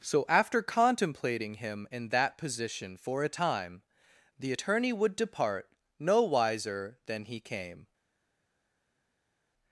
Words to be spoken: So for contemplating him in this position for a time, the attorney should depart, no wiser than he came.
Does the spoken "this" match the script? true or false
false